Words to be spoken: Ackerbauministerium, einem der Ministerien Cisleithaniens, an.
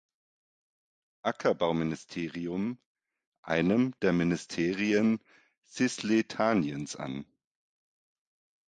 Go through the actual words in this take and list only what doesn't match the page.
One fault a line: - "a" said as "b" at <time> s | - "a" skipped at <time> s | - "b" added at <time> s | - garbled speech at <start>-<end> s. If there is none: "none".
none